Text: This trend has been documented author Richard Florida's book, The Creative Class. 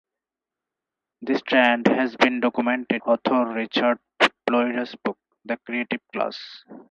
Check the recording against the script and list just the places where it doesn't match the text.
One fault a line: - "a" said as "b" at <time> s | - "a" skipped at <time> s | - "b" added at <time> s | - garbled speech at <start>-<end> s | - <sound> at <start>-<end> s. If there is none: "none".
none